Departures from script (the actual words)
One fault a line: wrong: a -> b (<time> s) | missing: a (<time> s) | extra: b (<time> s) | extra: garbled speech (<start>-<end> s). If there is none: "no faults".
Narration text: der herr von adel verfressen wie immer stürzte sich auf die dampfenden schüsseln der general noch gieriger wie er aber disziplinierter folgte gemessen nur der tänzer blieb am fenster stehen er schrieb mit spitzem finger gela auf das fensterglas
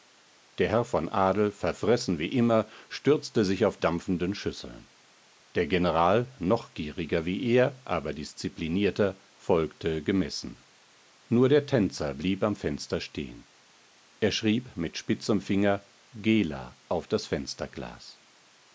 missing: die (3.8 s)